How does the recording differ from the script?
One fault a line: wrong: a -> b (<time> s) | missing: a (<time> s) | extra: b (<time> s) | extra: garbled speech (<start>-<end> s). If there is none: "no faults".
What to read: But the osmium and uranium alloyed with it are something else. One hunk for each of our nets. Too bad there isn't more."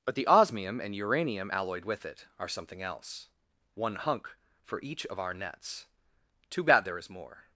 wrong: isn't -> is (7.0 s)